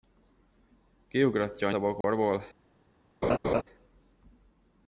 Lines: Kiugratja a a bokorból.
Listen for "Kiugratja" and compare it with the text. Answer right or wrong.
right